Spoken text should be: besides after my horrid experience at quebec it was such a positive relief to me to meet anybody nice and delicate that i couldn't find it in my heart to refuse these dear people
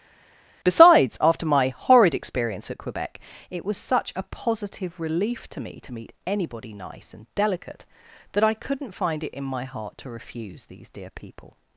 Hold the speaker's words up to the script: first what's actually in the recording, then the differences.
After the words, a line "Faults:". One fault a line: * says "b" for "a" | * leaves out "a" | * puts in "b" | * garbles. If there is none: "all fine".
besides after my horrid experience at quebec it was such a positive relief to me to meet anybody nice and delicate that i couldn't find it in my heart to refuse these dear people
Faults:
all fine